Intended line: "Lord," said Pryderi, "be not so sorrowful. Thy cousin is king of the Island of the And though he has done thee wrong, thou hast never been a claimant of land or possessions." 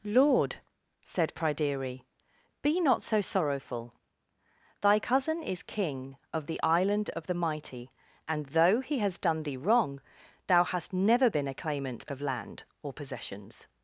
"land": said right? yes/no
yes